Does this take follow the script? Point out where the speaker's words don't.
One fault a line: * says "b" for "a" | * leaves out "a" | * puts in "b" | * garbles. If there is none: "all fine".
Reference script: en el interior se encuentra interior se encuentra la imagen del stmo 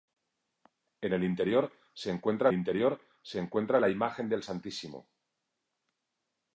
all fine